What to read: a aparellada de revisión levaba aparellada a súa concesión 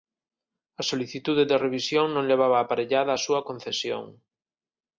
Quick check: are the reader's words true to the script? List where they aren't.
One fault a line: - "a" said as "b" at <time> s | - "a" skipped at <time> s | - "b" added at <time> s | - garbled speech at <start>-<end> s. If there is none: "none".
- "aparellada" said as "solicitude" at 0.9 s
- "non" added at 2.1 s